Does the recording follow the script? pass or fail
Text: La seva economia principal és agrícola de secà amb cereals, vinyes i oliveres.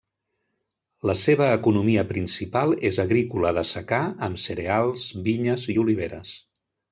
pass